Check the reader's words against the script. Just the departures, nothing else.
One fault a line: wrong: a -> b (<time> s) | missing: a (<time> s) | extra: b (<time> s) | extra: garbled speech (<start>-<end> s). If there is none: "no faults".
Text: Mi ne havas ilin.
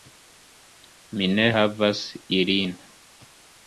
no faults